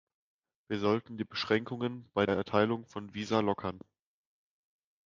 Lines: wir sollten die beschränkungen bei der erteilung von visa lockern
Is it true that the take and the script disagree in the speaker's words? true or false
true